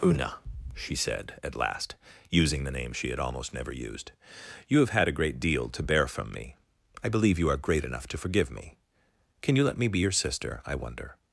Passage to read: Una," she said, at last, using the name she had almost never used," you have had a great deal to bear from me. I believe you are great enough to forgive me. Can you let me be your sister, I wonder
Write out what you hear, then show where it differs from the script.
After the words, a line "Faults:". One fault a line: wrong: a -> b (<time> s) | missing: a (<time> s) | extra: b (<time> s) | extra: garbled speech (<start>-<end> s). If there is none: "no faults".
Una," she said, at last, using the name she had almost never used," you have had a great deal to bear from me. I believe you are great enough to forgive me. Can you let me be your sister, I wonder
Faults:
no faults